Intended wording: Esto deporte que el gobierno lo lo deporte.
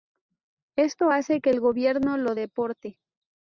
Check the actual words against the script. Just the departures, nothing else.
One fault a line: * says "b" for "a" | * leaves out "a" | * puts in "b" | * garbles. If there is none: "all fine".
* says "hace" for "deporte"
* leaves out "lo"